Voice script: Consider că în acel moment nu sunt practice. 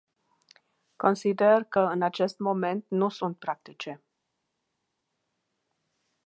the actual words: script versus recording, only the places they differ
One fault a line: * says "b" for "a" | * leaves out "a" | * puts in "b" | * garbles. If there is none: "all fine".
* says "acest" for "acel"